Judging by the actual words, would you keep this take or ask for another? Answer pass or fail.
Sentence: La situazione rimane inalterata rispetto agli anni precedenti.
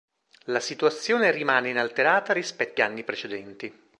fail